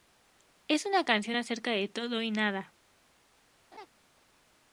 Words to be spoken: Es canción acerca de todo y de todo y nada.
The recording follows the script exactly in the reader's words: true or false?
false